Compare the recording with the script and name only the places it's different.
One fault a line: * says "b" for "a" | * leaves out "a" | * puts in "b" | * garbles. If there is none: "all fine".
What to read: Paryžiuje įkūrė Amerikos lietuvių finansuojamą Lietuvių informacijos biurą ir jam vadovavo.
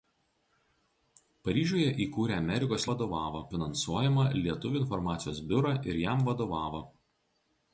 * says "vadovavo" for "lietuvių"